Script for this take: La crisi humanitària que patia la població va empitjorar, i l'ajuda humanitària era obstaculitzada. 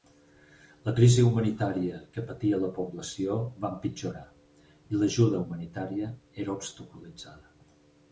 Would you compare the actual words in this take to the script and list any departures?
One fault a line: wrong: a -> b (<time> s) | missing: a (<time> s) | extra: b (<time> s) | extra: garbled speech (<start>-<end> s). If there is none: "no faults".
no faults